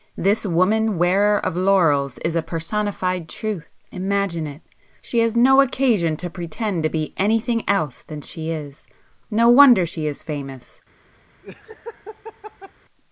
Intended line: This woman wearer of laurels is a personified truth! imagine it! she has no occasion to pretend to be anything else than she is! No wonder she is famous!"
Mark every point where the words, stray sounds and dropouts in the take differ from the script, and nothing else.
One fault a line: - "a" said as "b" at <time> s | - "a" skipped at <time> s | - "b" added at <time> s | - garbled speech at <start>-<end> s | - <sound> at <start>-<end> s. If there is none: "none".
- laugh at 11.4-12.7 s